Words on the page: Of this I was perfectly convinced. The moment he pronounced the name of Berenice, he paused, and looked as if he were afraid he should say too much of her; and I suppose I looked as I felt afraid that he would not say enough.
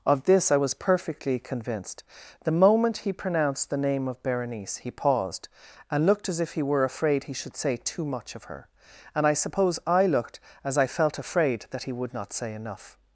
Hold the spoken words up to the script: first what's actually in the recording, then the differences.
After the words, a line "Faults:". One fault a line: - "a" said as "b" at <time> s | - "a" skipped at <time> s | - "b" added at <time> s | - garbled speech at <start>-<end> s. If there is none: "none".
Of this I was perfectly convinced. The moment he pronounced the name of Berenice, he paused, and looked as if he were afraid he should say too much of her; and I suppose I looked as I felt afraid that he would not say enough.
Faults:
none